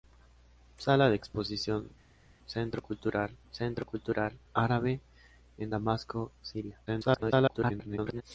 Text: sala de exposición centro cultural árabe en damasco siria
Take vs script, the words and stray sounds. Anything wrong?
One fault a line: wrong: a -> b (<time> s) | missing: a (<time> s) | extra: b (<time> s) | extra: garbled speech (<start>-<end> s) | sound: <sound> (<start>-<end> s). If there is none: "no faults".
extra: centro cultural (3.5 s)
extra: garbled speech (6.9-8.2 s)